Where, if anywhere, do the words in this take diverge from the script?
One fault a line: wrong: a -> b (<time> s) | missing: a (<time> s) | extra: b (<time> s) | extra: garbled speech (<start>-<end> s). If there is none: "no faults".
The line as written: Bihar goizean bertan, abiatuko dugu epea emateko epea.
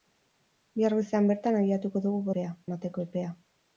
no faults